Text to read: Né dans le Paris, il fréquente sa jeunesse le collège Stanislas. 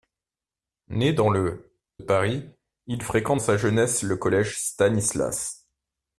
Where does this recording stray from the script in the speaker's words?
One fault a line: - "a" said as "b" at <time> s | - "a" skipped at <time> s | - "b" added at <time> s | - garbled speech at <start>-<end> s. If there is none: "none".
none